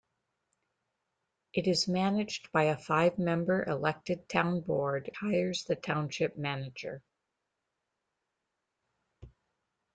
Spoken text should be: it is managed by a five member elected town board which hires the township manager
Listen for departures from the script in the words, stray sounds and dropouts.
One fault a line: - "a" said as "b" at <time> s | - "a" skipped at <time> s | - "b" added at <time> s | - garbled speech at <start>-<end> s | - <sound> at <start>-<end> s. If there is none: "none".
- "which" skipped at 5.1 s